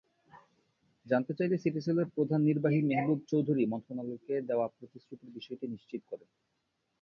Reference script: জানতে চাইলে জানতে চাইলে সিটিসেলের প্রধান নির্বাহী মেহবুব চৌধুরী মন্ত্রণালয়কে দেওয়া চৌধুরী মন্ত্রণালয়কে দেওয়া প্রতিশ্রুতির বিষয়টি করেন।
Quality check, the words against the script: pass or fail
fail